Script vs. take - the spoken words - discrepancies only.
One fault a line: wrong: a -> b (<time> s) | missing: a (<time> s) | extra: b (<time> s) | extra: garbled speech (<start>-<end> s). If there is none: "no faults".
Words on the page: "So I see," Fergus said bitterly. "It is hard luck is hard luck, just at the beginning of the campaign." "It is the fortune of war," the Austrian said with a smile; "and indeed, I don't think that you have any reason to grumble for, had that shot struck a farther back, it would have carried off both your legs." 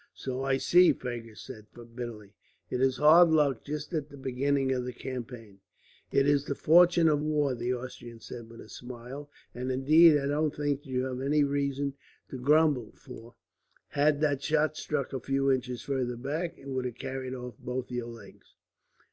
missing: is hard luck (3.7 s)
extra: few inches (15.2 s)